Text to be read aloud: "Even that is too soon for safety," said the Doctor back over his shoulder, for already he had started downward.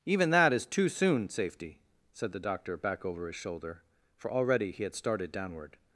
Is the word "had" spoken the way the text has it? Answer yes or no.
yes